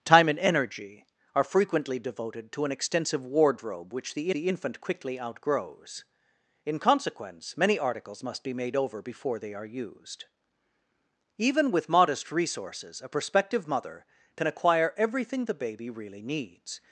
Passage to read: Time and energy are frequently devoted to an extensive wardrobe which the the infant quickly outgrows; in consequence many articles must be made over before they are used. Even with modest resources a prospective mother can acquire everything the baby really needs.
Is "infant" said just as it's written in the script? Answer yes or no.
yes